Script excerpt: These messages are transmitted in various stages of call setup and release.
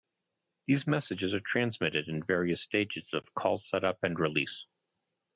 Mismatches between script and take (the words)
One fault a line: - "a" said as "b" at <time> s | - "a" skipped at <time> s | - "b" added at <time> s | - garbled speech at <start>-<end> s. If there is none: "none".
none